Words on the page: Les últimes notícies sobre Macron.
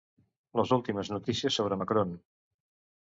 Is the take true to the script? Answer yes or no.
yes